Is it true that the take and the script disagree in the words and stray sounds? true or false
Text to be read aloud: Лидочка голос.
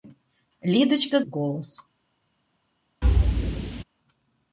true